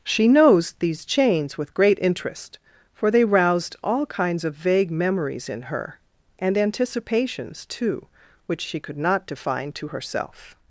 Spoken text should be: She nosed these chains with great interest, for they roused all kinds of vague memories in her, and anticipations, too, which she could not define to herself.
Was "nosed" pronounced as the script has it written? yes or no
no